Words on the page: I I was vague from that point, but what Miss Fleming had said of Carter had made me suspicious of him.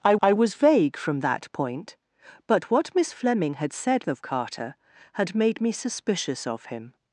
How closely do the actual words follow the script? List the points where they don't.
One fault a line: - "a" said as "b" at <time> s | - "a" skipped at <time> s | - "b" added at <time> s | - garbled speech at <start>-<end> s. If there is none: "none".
none